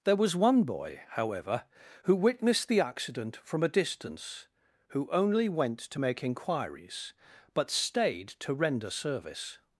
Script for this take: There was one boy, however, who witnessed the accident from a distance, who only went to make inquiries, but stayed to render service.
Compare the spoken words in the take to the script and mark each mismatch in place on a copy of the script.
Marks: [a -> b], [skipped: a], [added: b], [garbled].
There was one boy, however, who witnessed the accident from a distance, who only went to make inquiries, but stayed to render service.